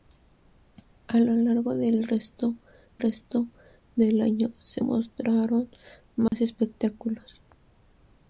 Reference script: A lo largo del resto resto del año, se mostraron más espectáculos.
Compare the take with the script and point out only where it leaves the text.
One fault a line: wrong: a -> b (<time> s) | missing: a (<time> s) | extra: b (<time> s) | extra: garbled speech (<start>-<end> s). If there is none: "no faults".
no faults